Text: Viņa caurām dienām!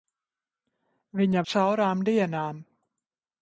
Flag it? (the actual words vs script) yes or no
no